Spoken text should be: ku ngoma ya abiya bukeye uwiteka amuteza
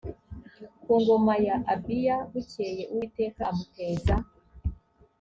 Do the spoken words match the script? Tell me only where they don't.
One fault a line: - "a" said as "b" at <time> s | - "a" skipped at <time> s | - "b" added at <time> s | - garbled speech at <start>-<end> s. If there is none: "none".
none